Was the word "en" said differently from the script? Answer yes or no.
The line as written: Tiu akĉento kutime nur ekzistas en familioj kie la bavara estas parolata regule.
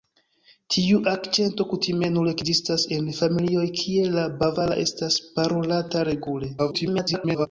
no